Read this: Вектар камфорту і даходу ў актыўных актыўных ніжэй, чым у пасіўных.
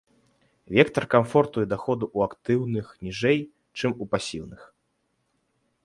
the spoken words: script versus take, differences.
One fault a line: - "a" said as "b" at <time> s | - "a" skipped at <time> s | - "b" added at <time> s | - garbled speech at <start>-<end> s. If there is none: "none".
- "актыўных" skipped at 2.9 s